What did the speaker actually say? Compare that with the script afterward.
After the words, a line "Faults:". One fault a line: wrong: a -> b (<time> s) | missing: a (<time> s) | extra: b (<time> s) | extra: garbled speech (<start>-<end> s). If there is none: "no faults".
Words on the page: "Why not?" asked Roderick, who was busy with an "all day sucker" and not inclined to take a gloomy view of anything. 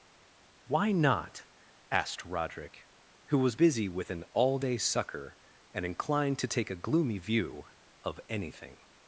"Why not?" asked Roderick, who was busy with an "all day sucker" and inclined to take a gloomy view of anything.
Faults:
missing: not (5.8 s)